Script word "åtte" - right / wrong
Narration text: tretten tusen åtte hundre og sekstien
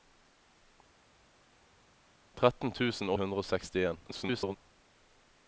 wrong